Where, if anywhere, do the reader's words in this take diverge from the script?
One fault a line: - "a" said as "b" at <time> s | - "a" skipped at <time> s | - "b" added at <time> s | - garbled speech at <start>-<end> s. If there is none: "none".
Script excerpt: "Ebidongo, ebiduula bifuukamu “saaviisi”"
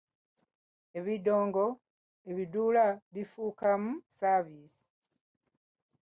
none